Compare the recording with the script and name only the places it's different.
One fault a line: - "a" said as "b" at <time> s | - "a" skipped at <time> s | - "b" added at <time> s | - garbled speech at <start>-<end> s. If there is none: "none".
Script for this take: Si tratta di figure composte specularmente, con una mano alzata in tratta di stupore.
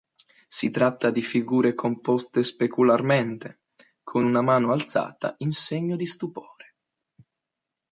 - "tratta" said as "segno" at 5.5 s